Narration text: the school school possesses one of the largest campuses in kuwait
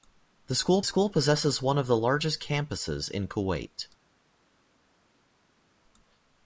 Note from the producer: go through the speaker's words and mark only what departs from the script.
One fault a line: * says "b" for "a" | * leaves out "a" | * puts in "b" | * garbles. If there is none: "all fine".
all fine